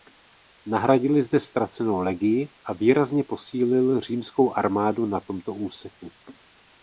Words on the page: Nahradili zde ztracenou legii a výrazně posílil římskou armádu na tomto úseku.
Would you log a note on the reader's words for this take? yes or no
no